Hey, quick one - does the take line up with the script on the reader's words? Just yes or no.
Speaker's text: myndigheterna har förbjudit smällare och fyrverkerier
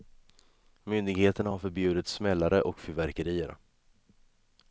yes